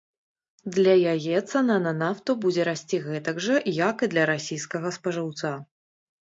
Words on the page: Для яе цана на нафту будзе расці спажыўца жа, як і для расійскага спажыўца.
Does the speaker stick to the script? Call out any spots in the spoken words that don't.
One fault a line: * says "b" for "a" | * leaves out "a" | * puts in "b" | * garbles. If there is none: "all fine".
* says "гэтак" for "спажыўца"